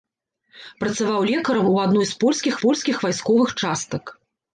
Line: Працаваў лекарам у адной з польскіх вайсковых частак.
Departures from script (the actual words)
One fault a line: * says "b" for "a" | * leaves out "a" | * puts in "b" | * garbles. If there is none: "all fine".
* puts in "польскіх"